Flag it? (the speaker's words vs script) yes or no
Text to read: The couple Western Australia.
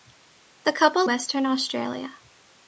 no